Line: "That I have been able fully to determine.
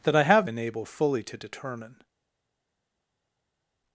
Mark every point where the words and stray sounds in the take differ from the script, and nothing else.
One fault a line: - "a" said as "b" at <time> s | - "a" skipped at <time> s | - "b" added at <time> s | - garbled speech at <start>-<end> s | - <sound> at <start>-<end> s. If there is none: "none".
none